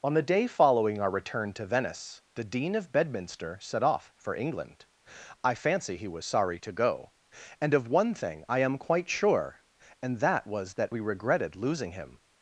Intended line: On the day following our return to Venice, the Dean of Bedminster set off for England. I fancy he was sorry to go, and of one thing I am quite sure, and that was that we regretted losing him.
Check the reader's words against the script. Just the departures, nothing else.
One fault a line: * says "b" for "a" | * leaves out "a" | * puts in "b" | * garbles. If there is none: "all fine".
all fine